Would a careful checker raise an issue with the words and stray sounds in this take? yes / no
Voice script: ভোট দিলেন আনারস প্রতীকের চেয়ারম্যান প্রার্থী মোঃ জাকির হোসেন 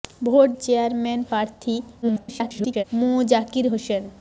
yes